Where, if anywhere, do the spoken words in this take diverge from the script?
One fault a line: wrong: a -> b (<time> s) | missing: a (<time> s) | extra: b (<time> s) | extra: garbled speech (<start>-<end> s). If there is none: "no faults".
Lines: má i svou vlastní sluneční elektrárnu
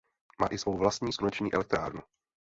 no faults